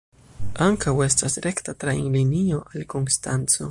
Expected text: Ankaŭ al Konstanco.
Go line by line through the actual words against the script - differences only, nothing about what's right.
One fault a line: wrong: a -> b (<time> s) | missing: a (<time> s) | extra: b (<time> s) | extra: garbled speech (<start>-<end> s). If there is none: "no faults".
extra: estas rekta trajnlinio (1.1 s)